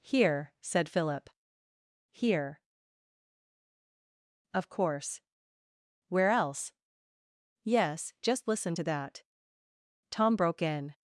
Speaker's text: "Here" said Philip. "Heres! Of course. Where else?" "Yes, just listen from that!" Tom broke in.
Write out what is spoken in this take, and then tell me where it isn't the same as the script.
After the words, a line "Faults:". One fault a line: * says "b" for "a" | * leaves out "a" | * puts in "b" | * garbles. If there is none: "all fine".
"Here" said Philip. "Here! Of course. Where else?" "Yes, just listen to that!" Tom broke in.
Faults:
* says "Here" for "Heres"
* says "to" for "from"